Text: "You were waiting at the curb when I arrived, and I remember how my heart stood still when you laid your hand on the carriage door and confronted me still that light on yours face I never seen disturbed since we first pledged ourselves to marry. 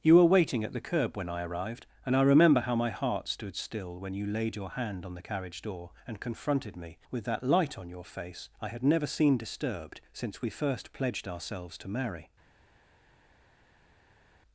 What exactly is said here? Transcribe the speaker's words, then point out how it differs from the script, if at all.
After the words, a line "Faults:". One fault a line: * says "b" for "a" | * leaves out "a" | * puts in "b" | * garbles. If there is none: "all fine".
"You were waiting at the curb when I arrived, and I remember how my heart stood still when you laid your hand on the carriage door and confronted me with that light on your face I had never seen disturbed since we first pledged ourselves to marry.
Faults:
* says "with" for "still"
* says "your" for "yours"
* puts in "had"